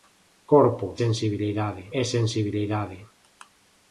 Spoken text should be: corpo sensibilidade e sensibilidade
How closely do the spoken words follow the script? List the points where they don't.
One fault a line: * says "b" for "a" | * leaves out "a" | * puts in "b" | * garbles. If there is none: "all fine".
all fine